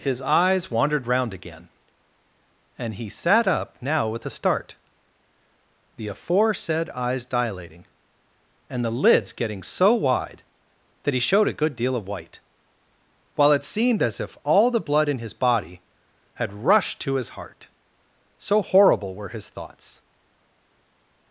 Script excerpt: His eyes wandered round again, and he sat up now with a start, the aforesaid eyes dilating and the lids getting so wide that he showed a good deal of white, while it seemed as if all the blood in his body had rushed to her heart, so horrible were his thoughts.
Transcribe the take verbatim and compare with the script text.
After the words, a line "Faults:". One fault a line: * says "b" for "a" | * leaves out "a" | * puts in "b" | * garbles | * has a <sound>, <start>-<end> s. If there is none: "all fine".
His eyes wandered round again, and he sat up now with a start, the aforesaid eyes dilating and the lids getting so wide that he showed a good deal of white, while it seemed as if all the blood in his body had rushed to his heart, so horrible were his thoughts.
Faults:
* says "his" for "her"